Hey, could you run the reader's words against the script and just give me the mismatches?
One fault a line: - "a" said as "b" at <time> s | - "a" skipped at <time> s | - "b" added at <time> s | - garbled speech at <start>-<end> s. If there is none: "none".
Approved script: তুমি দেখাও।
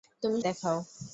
none